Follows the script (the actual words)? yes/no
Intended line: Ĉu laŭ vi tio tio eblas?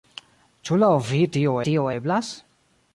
yes